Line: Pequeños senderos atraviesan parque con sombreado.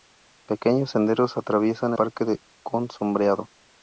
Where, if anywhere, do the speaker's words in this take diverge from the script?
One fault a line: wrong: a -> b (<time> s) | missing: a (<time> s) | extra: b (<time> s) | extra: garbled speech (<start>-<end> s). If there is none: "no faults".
no faults